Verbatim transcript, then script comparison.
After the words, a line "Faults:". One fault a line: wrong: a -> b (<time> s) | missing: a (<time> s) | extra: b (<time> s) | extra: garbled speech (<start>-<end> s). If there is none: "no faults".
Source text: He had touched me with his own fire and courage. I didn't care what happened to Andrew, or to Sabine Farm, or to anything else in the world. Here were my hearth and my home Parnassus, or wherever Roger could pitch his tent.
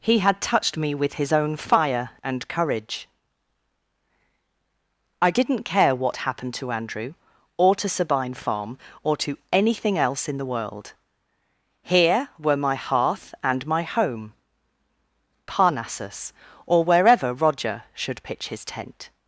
He had touched me with his own fire and courage. I didn't care what happened to Andrew, or to Sabine Farm, or to anything else in the world. Here were my hearth and my home Parnassus, or wherever Roger should pitch his tent.
Faults:
wrong: could -> should (17.9 s)